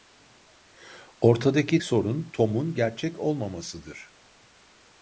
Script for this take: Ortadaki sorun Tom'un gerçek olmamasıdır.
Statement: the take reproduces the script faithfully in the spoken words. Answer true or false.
true